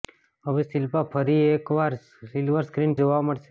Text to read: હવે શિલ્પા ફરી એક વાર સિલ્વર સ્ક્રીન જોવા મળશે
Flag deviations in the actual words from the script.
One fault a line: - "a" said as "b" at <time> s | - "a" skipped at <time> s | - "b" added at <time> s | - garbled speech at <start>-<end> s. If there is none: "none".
none